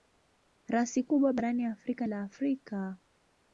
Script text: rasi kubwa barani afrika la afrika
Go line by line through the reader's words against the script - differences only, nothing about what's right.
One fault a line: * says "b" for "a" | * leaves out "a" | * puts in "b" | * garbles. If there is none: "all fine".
all fine